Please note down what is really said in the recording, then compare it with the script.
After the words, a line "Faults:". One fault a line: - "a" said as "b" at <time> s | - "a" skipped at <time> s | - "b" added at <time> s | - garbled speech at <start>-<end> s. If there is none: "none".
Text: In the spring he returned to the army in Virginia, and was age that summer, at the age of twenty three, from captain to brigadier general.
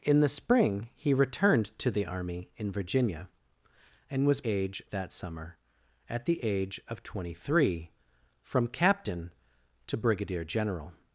In the spring he returned to the army in Virginia, and was age that summer, at the age of twenty three, from captain to brigadier general.
Faults:
none